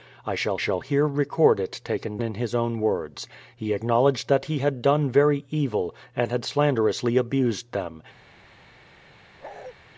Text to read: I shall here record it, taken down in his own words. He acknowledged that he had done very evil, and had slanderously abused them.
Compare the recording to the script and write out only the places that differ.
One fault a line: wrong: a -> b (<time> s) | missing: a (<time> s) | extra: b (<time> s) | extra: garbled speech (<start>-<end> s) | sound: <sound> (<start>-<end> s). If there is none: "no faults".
extra: shall (0.5 s)
missing: down (2.2 s)
sound: bark (9.4-9.7 s)